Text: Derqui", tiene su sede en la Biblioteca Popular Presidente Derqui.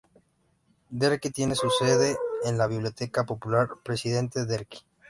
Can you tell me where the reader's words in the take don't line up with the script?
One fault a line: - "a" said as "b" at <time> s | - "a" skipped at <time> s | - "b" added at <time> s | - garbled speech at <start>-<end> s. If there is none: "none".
none